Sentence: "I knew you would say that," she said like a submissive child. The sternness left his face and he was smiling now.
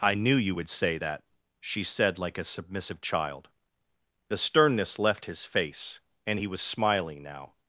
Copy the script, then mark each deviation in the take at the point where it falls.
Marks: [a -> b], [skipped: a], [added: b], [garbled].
"I knew you would say that," she said like a submissive child. The sternness left his face and he was smiling now.